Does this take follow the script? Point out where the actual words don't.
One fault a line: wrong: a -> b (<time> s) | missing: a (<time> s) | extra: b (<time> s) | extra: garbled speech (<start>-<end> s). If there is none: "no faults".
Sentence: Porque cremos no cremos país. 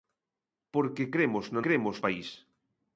no faults